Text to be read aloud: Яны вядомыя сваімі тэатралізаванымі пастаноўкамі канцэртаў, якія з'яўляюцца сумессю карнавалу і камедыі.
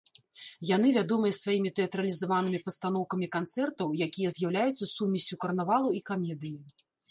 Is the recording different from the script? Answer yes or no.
no